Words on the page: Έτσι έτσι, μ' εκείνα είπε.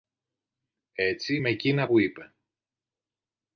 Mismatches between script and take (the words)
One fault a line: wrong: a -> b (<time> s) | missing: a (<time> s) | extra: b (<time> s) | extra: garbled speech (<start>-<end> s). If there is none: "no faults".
missing: έτσι (1.4 s)
extra: που (1.8 s)